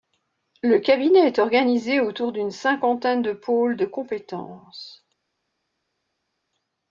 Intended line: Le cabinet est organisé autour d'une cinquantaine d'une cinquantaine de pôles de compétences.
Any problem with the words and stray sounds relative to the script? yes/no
yes